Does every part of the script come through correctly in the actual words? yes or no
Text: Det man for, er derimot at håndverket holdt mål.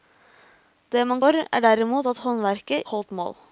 yes